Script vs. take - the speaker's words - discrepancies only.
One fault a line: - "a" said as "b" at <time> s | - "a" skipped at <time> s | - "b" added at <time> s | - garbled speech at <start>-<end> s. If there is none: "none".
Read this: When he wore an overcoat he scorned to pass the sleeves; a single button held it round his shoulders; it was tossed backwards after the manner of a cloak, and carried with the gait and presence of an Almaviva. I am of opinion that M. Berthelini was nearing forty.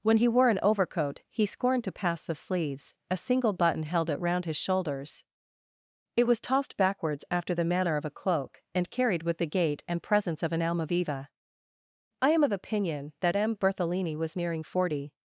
none